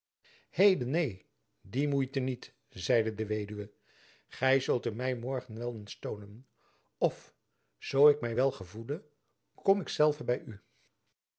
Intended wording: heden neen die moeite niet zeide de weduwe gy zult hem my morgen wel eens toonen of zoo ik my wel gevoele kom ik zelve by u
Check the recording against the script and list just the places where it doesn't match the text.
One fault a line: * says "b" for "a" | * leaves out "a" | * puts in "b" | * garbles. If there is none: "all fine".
all fine